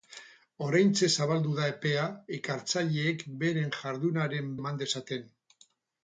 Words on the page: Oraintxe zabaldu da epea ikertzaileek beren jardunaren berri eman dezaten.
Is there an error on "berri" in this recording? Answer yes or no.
yes